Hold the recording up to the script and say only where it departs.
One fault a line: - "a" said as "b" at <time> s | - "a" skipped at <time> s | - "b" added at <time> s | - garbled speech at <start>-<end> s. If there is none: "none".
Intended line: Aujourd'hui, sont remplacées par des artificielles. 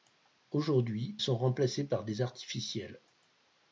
none